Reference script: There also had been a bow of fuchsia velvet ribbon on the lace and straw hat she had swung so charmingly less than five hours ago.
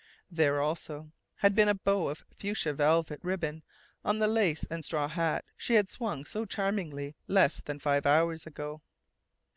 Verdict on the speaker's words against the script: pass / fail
pass